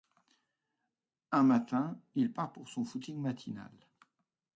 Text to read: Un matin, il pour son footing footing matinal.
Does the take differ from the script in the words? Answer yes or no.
yes